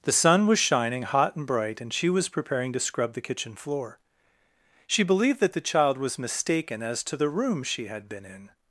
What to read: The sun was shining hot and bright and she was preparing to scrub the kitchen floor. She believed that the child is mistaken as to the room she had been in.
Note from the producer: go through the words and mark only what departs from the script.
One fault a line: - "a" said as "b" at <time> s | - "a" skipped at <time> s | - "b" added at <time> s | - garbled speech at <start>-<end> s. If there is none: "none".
- "is" said as "was" at 6.0 s